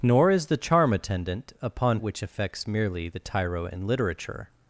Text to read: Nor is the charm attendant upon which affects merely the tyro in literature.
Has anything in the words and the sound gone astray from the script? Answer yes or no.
no